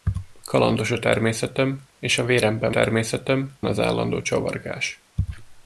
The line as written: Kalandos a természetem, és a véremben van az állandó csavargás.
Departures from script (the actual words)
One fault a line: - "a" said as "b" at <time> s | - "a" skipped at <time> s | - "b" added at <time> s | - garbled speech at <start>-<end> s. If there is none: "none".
- "van" said as "természetem" at 2.7 s